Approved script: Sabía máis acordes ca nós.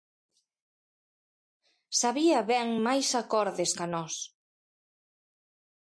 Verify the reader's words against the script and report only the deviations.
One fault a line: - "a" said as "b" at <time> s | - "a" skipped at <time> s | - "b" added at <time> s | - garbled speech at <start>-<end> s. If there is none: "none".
- "ben" added at 2.5 s